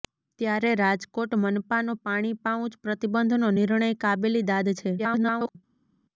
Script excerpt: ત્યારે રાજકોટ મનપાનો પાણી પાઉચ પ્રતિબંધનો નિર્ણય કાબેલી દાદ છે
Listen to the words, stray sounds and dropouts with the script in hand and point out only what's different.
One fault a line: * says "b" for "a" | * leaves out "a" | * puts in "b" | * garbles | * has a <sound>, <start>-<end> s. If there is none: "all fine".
* garbles